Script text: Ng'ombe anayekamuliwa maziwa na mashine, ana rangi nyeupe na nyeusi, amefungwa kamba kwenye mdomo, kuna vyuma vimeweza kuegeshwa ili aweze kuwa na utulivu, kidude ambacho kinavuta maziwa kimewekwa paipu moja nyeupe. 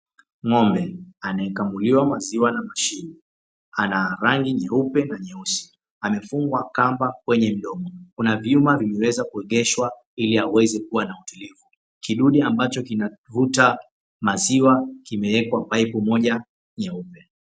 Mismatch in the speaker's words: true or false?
false